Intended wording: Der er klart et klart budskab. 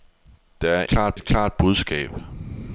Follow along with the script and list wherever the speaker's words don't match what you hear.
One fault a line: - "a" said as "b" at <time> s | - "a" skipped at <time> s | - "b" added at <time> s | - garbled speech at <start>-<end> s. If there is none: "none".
none